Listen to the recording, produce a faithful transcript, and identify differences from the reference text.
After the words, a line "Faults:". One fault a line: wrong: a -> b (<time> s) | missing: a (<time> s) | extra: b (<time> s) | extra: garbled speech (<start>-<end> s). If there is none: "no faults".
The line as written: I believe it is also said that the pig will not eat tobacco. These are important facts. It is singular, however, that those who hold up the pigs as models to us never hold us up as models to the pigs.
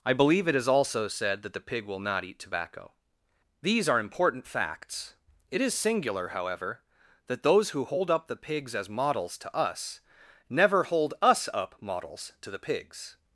I believe it is also said that the pig will not eat tobacco. These are important facts. It is singular, however, that those who hold up the pigs as models to us never hold us up models to the pigs.
Faults:
missing: as (11.8 s)